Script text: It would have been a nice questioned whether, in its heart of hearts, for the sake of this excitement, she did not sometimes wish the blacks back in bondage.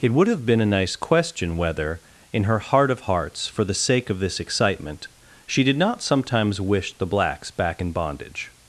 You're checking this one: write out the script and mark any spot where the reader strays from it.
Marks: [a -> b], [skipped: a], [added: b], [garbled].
It would have been a nice [questioned -> question] whether, in [its -> her] heart of hearts, for the sake of this excitement, she did not sometimes wish the blacks back in bondage.